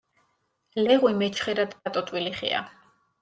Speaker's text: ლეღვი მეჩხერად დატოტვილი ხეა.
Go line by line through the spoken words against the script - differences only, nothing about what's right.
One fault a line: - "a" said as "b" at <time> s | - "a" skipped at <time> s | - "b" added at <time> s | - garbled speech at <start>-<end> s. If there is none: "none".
none